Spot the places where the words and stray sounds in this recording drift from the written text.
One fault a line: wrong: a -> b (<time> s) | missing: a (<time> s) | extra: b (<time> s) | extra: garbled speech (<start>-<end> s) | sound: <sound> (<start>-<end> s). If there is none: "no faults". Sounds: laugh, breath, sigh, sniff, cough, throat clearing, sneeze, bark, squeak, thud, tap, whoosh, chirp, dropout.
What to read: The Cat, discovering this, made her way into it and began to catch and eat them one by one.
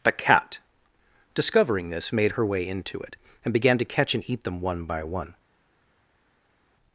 no faults